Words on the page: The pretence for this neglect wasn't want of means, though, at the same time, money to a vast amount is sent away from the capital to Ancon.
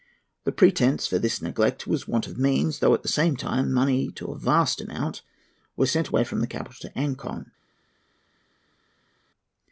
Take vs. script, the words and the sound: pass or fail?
fail